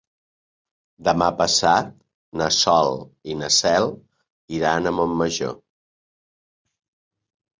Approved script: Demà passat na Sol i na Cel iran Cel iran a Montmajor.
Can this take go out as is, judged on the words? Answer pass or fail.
fail